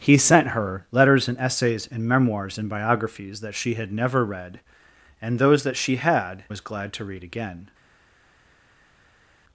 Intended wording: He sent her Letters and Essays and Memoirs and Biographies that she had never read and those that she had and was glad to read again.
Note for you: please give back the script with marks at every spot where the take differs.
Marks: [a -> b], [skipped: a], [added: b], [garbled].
He sent her Letters and Essays and Memoirs and Biographies that she had never read and those that she had [skipped: and] was glad to read again.